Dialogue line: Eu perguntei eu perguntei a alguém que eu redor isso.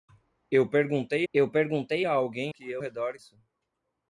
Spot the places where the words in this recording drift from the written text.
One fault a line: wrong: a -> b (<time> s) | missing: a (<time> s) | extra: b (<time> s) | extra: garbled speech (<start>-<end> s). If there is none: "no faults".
no faults